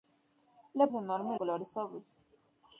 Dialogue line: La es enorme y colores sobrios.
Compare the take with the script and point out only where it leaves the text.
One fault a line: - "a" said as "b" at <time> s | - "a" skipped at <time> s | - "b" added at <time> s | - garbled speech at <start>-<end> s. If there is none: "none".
none